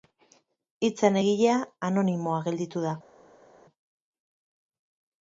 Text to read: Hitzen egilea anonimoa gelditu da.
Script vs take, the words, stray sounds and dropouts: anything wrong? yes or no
no